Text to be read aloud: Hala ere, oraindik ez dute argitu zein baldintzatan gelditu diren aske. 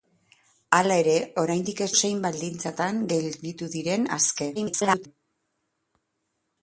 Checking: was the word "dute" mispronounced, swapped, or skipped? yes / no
yes